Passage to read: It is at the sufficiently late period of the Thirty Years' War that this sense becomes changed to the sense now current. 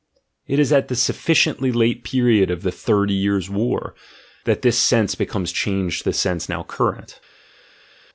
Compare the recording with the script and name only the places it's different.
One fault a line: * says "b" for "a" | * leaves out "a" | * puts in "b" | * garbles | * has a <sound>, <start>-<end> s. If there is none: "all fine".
all fine